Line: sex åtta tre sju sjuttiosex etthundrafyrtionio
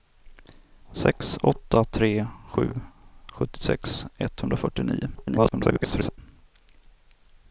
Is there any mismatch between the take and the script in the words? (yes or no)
yes